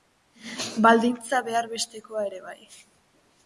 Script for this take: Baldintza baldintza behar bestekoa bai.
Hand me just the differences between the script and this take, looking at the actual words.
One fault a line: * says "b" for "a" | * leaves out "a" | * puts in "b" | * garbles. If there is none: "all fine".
* leaves out "baldintza"
* puts in "ere"